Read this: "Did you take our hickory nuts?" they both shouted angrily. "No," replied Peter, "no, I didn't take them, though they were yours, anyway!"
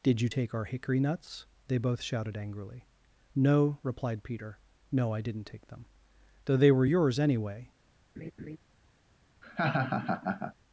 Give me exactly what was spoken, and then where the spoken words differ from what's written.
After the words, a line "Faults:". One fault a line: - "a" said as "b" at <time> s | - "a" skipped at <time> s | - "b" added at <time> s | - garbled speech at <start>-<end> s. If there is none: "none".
"Did you take our hickory nuts?" they both shouted angrily. "No," replied Peter, "no, I didn't take them, though they were yours, anyway!"
Faults:
none